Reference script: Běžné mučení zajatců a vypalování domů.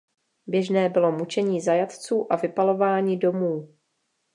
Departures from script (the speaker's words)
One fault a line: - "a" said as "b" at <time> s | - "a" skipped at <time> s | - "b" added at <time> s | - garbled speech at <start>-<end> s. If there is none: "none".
- "bylo" added at 0.9 s